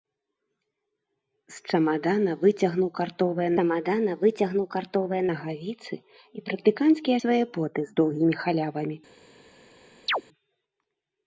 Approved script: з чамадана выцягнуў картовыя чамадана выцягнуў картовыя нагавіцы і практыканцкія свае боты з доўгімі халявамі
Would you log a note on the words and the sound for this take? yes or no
yes